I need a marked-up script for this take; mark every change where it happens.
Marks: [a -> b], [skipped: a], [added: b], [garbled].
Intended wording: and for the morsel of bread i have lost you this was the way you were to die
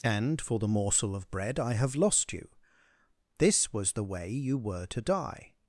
and for the morsel of bread i have lost you this was the way you were to die